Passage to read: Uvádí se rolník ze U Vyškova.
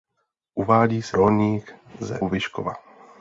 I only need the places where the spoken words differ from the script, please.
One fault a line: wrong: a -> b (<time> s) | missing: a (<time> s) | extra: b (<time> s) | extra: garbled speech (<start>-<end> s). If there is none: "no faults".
no faults